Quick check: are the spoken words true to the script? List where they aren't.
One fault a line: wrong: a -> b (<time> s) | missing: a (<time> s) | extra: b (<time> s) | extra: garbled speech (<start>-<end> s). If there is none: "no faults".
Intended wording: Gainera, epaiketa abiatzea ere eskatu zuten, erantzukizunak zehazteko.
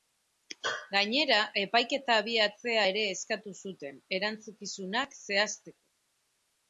no faults